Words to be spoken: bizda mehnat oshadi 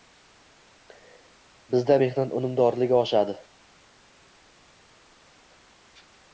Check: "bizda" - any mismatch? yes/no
no